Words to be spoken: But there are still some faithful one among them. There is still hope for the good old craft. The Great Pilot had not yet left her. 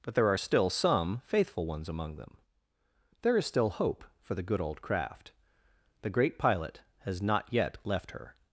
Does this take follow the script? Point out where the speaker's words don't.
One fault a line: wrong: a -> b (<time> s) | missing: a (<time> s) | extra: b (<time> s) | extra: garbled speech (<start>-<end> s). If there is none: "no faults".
wrong: one -> ones (1.6 s)
wrong: had -> has (7.0 s)